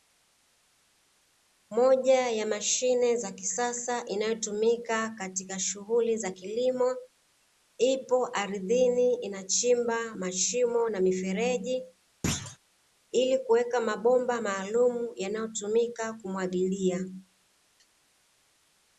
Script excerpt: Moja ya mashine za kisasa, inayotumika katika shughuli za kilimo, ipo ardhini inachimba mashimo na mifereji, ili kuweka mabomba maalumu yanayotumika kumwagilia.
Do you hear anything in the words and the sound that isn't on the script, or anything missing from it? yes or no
yes